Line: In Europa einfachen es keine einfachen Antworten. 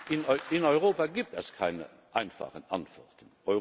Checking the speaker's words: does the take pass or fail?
fail